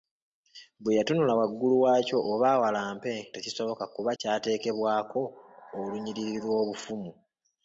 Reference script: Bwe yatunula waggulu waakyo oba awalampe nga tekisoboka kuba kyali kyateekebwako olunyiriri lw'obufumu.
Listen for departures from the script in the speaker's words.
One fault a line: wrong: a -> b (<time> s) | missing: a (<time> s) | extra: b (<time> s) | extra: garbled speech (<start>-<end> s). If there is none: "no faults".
missing: nga (3.1 s)
missing: kyali (4.1 s)